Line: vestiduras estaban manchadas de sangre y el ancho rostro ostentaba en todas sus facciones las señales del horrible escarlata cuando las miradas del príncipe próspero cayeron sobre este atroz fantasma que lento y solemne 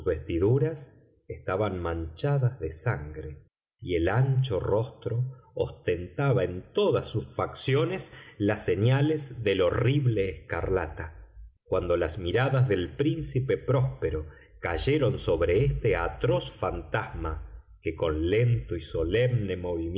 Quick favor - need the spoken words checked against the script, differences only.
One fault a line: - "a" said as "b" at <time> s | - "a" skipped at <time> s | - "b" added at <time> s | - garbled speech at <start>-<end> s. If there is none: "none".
- "con" added at 18.0 s